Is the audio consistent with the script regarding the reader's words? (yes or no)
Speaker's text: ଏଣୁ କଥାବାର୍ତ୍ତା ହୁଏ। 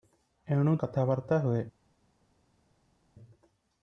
yes